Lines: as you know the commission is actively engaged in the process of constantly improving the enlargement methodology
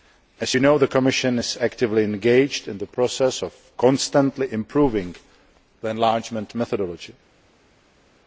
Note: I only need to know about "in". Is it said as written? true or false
true